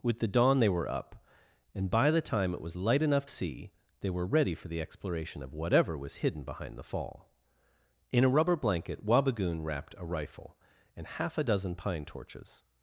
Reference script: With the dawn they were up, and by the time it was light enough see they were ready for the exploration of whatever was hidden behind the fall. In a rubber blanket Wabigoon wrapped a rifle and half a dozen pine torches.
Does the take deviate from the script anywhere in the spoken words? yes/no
no